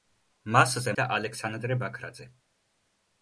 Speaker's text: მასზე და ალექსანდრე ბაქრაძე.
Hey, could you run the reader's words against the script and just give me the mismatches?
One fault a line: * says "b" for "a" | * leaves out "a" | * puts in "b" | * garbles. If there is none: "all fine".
all fine